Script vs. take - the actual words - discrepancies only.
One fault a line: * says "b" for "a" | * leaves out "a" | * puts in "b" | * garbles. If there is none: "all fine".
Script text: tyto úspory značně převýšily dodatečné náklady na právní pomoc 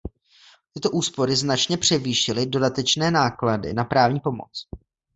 all fine